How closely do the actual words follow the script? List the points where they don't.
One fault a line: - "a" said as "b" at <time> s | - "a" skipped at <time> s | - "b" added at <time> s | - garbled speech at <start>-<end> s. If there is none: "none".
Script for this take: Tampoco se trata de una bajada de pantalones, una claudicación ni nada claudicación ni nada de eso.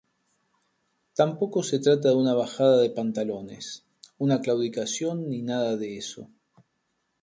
- "claudicación ni nada" skipped at 5.8 s